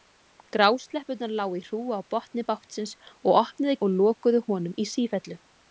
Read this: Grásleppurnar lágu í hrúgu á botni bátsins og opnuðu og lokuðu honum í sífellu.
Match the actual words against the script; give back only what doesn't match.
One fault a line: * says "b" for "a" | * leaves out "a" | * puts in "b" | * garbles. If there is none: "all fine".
all fine